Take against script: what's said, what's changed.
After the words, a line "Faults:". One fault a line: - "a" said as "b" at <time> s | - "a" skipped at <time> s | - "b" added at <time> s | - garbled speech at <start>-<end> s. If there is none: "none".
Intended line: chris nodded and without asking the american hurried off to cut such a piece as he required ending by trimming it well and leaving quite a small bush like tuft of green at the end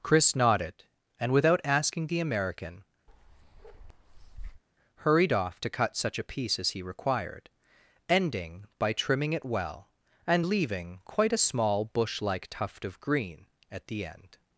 chris nodded and without asking the american hurried off to cut such a piece as he required ending by trimming it well and leaving quite a small bush like tuft of green at the end
Faults:
none